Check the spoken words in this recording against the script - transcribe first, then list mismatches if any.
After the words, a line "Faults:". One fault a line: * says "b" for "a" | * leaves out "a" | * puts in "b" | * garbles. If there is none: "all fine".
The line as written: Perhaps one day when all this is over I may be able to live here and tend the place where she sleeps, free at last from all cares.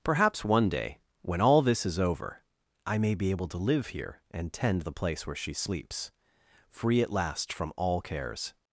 Perhaps one day when all this is over I may be able to live here and tend the place where she sleeps, free at last from all cares.
Faults:
all fine